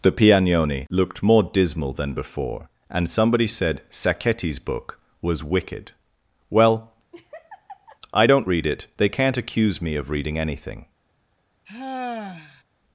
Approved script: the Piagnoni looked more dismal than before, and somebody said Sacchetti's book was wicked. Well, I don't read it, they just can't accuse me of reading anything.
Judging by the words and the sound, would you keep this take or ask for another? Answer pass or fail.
fail